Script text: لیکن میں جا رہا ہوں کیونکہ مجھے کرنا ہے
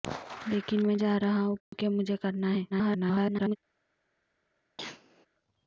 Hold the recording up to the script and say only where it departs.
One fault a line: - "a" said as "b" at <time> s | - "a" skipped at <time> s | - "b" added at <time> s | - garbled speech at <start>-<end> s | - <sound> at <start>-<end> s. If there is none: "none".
- dropout at 1.6-1.7 s
- garbled speech at 2.7-3.6 s
- cough at 4.8-5.3 s